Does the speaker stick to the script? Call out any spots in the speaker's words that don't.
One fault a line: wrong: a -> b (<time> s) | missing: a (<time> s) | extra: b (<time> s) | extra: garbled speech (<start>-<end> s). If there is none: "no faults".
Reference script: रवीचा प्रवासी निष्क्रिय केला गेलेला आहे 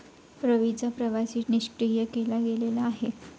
no faults